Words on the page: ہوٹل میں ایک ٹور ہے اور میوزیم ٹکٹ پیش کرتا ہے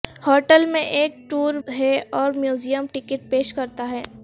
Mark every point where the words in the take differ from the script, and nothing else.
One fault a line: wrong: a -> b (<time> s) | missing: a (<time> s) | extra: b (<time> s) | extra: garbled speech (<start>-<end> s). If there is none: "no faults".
no faults